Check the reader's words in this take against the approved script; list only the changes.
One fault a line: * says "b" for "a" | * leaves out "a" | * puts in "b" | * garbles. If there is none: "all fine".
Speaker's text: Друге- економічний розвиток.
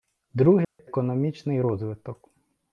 all fine